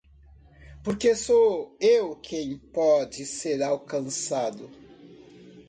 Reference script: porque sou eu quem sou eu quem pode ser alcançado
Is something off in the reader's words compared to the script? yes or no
yes